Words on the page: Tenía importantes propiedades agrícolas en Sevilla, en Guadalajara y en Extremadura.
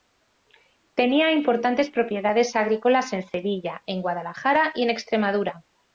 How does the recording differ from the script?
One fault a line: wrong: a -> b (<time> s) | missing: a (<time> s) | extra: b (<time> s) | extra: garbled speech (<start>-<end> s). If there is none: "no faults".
no faults